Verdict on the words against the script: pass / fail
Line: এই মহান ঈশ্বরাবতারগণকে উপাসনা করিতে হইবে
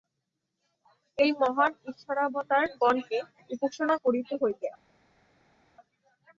pass